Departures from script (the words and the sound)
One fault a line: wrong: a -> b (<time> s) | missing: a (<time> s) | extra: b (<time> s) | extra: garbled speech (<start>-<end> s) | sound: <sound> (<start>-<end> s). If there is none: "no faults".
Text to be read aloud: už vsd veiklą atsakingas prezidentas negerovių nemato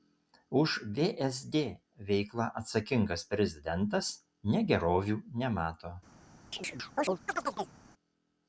sound: chirp (6.5-7.8 s)